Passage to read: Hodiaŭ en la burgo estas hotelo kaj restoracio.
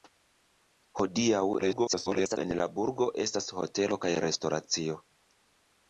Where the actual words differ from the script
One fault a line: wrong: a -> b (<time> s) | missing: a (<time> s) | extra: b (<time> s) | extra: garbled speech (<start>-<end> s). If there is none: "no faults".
extra: garbled speech (1.6-2.4 s)